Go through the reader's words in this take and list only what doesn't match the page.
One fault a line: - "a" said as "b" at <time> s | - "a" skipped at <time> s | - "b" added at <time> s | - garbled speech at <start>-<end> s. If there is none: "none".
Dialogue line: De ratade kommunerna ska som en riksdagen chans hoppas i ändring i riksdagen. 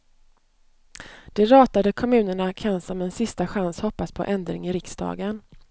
- "ska" said as "kan" at 2.5 s
- "riksdagen" said as "sista" at 3.1 s
- "i" said as "på" at 4.1 s